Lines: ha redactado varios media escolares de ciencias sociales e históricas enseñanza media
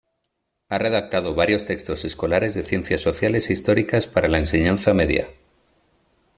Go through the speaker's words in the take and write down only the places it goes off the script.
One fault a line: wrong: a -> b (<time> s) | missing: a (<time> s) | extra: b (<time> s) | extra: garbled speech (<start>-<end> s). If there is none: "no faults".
wrong: media -> textos (1.7 s)
extra: para la (4.1 s)